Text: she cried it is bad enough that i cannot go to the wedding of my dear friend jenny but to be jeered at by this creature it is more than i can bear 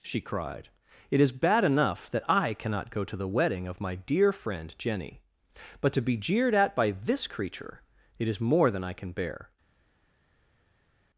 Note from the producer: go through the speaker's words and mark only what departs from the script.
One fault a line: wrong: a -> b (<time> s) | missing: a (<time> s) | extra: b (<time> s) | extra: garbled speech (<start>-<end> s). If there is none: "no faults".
no faults